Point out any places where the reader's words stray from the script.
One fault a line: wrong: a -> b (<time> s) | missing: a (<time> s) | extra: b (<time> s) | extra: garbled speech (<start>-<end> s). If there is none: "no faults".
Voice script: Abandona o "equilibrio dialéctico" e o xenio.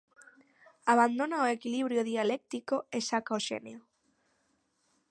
extra: saca (3.1 s)